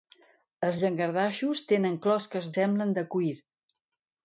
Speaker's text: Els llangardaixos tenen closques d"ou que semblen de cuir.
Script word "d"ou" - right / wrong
wrong